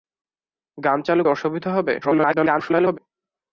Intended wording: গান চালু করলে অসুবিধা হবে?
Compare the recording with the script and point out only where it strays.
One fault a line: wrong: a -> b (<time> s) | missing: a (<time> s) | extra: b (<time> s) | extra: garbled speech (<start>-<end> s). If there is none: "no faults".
missing: করলে (1.2 s)
extra: garbled speech (2.0-3.0 s)